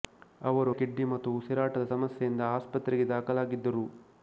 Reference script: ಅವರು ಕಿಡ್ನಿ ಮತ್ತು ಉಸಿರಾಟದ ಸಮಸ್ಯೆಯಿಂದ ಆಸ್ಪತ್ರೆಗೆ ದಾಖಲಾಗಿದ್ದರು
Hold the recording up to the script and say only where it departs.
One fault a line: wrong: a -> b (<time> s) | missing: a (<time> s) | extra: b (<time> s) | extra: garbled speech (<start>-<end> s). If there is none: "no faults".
no faults